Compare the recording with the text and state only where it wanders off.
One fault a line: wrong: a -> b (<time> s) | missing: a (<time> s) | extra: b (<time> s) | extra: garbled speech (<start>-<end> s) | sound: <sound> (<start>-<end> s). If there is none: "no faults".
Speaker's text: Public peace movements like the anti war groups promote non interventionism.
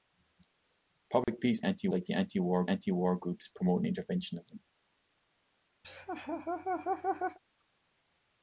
sound: dropout (1.2-1.3 s)
wrong: movements -> anti (1.6 s)
extra: anti war (2.6 s)
missing: non (3.8 s)
sound: laugh (5.8-7.4 s)